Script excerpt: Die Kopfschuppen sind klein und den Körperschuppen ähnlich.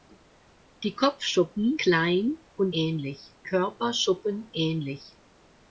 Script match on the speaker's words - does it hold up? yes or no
no